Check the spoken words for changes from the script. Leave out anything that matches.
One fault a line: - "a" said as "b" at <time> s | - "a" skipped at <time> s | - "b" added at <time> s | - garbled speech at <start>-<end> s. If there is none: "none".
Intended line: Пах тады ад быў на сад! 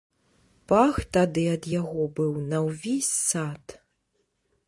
- "яго" added at 1.8 s
- "ўвесь" added at 2.7 s